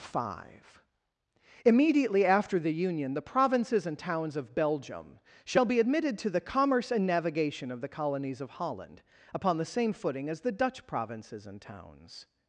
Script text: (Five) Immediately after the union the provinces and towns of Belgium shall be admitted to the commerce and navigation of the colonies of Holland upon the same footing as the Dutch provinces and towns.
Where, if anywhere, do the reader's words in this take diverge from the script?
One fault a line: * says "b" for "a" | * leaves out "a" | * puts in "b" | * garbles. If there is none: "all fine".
all fine